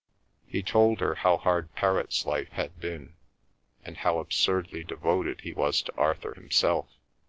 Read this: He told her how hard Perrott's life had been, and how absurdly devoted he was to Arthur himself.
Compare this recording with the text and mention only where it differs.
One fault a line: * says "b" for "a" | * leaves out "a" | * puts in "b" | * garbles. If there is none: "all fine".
all fine